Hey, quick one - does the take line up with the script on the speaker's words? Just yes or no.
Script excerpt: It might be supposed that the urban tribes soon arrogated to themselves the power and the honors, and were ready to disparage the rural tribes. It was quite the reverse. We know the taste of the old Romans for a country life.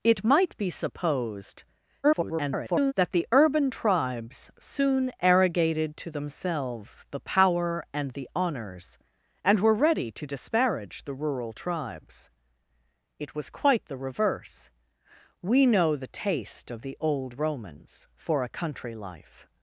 no